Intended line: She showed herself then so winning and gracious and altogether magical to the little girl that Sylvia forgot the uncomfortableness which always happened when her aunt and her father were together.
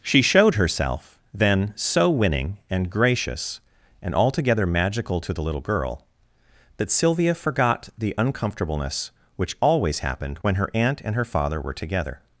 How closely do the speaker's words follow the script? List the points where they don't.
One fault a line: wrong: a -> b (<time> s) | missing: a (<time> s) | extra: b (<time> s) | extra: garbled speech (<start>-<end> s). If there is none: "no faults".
no faults